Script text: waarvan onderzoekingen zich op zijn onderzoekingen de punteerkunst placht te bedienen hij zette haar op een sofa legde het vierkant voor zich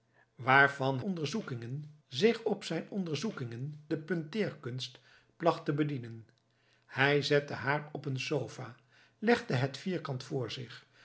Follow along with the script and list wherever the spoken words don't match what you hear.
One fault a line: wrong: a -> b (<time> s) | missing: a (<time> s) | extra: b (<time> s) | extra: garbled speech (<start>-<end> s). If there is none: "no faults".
no faults